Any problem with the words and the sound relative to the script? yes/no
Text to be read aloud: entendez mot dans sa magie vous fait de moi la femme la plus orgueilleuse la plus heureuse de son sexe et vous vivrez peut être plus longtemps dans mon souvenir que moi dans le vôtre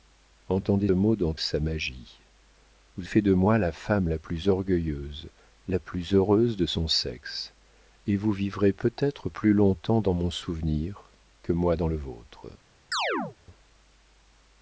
yes